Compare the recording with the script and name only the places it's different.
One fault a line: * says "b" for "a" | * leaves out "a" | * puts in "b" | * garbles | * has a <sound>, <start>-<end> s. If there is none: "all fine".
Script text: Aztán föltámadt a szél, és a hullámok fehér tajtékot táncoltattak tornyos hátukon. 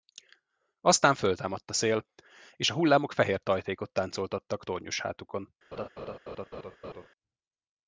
* has a laugh, 5.7-7.1 s